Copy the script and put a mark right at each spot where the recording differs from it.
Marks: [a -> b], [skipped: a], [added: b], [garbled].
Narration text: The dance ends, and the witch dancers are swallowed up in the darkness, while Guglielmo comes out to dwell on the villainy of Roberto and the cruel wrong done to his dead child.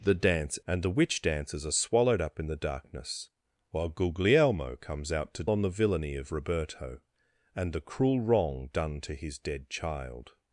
The dance [skipped: ends,] and the witch dancers are swallowed up in the darkness, while Guglielmo comes out to [skipped: dwell] on the villainy of Roberto and the cruel wrong done to his dead child.